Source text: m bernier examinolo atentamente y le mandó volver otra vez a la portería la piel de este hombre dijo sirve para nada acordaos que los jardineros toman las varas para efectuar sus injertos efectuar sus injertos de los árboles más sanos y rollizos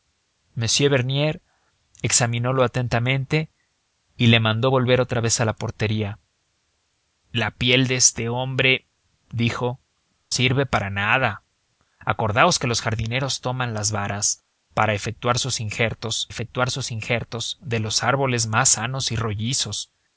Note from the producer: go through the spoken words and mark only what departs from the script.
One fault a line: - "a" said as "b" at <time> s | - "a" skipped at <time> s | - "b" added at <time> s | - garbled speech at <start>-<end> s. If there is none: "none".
none